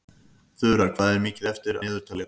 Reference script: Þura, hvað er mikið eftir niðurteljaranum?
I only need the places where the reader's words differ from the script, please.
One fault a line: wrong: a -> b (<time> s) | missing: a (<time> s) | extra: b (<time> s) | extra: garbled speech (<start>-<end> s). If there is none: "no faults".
no faults